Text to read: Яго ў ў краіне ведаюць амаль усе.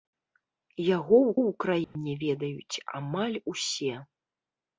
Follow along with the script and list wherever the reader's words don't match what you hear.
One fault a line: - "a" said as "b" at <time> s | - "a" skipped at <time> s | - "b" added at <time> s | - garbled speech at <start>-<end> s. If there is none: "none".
none